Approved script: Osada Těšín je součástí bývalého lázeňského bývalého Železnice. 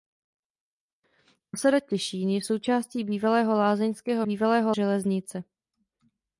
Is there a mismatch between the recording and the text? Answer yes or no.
no